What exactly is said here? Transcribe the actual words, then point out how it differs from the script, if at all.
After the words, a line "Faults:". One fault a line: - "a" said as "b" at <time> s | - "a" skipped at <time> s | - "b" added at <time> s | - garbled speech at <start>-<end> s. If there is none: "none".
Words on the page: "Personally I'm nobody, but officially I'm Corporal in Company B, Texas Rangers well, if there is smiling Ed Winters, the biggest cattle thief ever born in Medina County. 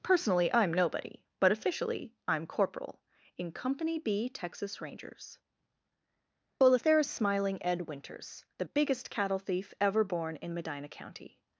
"Personally I'm nobody, but officially I'm Corporal in Company B, Texas Rangers well, if there is smiling Ed Winters, the biggest cattle thief ever born in Medina County.
Faults:
none